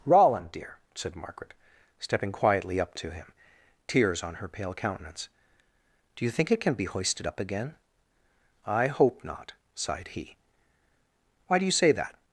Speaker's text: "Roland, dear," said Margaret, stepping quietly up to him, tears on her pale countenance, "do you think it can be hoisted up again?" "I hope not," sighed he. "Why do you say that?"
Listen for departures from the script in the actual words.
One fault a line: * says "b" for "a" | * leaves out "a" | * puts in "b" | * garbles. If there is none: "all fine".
all fine